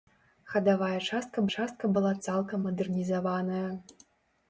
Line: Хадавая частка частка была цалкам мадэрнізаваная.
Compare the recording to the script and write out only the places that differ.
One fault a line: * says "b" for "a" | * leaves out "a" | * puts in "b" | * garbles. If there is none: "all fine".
all fine